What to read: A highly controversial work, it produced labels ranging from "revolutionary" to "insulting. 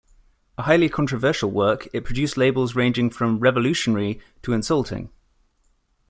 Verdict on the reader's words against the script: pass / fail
pass